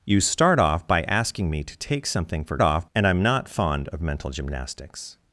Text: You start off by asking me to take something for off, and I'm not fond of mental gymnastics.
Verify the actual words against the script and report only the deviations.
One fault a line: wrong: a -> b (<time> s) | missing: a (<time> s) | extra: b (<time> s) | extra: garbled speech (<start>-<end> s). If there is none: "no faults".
no faults